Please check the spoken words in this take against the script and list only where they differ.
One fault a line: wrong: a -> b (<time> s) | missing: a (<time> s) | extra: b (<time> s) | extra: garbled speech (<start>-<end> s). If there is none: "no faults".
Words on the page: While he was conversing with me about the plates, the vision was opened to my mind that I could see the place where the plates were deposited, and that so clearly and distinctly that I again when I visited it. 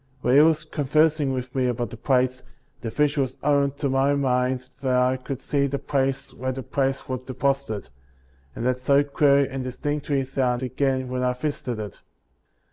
no faults